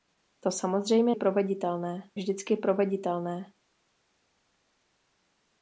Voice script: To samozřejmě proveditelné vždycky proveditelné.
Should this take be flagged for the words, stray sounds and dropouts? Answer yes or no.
no